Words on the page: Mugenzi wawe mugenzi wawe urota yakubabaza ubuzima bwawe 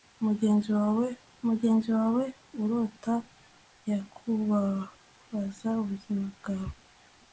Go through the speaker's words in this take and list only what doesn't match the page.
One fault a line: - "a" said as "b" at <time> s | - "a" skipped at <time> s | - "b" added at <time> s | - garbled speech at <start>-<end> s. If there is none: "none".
none